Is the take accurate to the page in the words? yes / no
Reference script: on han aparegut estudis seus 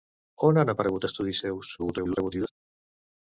no